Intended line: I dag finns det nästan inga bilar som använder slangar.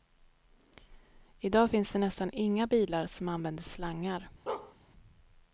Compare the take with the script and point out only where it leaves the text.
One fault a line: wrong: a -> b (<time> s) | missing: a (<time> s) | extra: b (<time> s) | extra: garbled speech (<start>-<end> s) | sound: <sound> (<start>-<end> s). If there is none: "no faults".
sound: bark (4.5-4.7 s)